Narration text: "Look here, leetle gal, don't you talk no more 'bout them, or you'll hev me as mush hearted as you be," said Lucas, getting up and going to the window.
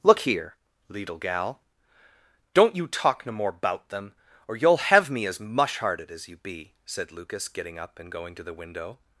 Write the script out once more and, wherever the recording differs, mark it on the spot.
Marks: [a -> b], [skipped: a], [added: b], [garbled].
"Look here, leetle gal, don't you talk no more 'bout them, or you'll hev me as mush hearted as you be," said Lucas, getting up and going to the window.